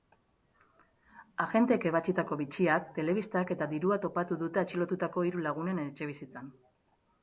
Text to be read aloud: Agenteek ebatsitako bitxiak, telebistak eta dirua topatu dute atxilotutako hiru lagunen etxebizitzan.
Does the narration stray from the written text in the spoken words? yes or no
no